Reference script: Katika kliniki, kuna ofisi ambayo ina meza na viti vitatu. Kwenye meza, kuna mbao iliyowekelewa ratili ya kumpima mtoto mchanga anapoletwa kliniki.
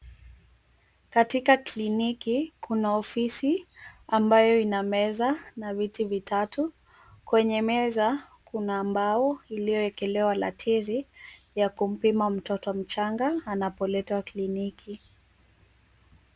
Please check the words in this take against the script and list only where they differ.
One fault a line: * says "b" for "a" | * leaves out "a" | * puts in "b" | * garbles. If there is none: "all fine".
all fine